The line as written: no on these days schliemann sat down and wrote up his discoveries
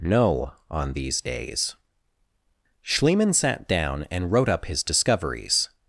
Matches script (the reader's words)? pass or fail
pass